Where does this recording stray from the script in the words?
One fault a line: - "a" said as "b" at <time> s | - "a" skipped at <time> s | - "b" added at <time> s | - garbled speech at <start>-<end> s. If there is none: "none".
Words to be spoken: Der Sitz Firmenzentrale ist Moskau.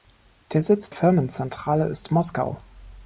none